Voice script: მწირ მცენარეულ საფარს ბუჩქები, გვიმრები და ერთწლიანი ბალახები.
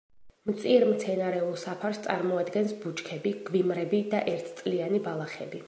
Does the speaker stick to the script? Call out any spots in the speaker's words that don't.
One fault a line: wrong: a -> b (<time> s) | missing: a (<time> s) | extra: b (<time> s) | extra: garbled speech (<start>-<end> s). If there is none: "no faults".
extra: წარმოადგენს (2.1 s)